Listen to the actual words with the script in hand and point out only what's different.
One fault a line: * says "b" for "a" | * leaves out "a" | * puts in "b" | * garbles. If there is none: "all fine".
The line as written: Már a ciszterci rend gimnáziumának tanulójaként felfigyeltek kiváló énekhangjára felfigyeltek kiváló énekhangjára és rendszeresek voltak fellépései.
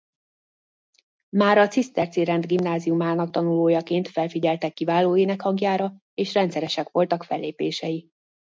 * leaves out "felfigyeltek kiváló énekhangjára"